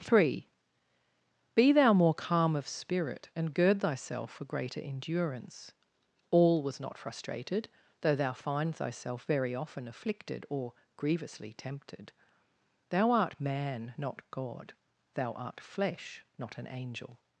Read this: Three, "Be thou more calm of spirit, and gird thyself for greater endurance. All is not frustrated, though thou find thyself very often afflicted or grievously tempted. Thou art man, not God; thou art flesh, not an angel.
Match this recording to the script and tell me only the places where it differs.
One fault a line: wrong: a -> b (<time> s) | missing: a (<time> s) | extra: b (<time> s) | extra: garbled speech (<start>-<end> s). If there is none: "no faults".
wrong: is -> was (6.6 s)